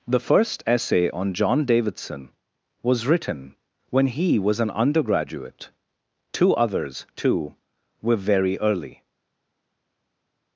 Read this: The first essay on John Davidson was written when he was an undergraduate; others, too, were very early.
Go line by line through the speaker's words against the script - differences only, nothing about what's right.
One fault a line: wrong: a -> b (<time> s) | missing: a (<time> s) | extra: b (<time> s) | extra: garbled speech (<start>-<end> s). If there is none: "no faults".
extra: two (6.3 s)